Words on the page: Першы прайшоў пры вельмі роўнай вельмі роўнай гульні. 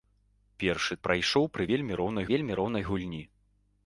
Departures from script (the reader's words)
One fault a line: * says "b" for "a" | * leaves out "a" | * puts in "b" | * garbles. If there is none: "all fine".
all fine